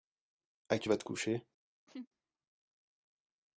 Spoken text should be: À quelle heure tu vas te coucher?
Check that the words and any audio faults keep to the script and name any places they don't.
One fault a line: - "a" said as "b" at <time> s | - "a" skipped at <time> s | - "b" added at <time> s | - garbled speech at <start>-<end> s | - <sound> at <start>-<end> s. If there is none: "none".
- "quelle heure" skipped at 0.8 s
- laugh at 1.9-2.1 s